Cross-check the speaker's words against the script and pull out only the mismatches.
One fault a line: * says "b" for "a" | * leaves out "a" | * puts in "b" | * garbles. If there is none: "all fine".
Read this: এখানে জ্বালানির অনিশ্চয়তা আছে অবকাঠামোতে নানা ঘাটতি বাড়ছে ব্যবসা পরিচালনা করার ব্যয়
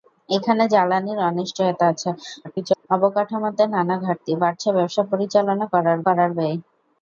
* garbles
* puts in "করার"